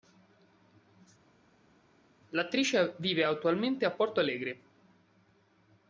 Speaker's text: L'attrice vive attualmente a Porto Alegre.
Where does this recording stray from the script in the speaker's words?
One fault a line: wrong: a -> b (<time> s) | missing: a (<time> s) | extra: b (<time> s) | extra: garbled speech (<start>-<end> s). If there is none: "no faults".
no faults